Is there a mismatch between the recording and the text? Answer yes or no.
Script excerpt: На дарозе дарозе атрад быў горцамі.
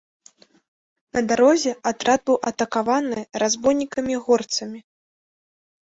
yes